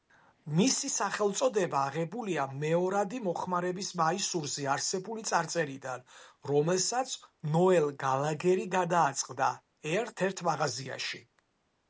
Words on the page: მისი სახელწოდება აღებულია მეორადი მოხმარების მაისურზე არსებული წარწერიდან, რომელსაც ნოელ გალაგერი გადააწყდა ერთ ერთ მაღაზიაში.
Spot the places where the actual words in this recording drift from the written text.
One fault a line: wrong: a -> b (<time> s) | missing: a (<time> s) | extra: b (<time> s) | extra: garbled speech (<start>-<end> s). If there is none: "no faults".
no faults